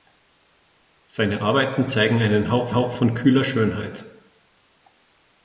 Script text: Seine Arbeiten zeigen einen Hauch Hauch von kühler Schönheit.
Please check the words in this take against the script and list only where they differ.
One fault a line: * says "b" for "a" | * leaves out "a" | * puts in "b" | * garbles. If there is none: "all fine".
all fine